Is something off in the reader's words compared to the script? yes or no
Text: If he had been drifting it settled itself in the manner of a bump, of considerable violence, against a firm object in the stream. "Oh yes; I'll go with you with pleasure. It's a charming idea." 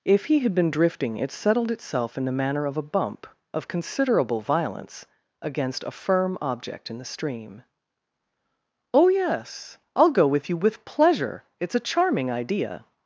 no